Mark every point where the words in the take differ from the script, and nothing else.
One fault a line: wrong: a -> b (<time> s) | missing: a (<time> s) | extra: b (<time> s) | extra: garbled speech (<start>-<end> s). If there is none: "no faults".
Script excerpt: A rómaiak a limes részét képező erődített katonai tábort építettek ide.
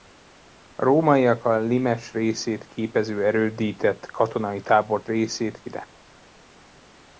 wrong: építettek -> részét (5.1 s)